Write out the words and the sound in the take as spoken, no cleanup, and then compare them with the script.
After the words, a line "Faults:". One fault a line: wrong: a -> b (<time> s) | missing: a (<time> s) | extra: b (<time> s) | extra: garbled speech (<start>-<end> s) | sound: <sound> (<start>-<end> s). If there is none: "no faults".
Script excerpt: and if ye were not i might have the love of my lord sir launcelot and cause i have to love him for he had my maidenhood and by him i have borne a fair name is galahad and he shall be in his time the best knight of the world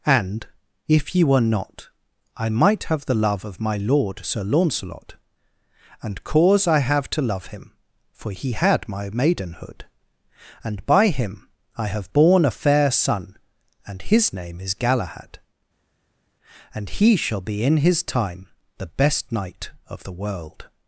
and if ye were not i might have the love of my lord sir launcelot and cause i have to love him for he had my maidenhood and by him i have borne a fair son and his name is galahad and he shall be in his time the best knight of the world
Faults:
extra: son and his (12.9 s)